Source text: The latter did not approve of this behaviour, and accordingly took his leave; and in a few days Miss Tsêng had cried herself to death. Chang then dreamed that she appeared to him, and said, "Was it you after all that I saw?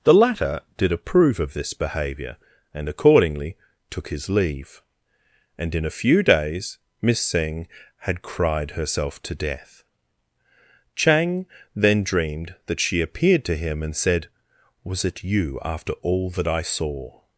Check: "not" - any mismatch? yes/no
yes